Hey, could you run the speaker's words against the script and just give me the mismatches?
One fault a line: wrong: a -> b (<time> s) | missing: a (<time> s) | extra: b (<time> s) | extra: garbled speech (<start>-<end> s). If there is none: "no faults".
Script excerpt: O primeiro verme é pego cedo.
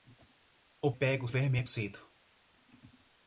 wrong: primeiro -> pego (0.9 s)
missing: pego (1.6 s)